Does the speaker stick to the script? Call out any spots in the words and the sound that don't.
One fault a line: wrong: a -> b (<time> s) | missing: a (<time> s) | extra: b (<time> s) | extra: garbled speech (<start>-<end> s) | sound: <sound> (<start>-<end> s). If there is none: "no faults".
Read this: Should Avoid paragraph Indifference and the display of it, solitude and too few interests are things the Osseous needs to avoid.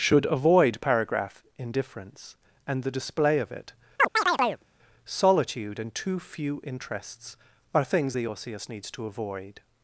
sound: chirp (4.0-4.6 s)